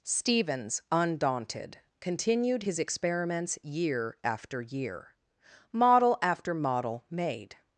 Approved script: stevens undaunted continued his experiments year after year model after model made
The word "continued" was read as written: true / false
true